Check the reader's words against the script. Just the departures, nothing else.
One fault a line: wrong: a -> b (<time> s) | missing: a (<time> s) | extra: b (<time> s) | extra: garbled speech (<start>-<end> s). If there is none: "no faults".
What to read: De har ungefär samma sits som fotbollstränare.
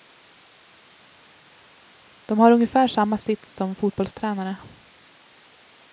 no faults